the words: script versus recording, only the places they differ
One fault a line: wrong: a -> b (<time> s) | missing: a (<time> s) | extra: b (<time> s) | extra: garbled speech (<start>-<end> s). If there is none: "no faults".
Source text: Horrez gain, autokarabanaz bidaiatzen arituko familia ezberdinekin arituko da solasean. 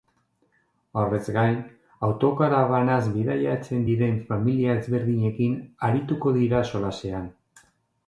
wrong: arituko -> diren (3.9 s)
wrong: da -> dira (6.4 s)